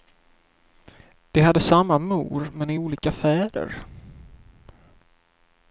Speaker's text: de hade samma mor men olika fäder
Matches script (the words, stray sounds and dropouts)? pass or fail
pass